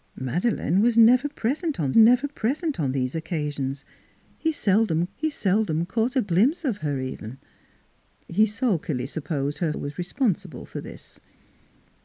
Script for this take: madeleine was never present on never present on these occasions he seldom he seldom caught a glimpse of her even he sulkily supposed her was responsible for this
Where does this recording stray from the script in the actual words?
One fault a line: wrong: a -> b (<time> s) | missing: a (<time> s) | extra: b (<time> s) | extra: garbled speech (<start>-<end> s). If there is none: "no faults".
no faults